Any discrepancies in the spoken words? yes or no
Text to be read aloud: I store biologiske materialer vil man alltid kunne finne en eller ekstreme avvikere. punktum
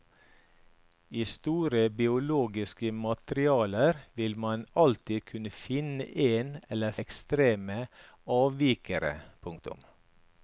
no